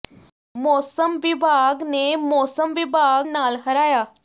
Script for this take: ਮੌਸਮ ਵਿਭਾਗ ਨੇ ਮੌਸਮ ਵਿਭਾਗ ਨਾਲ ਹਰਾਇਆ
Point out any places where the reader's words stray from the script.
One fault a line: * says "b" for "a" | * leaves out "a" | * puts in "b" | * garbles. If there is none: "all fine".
all fine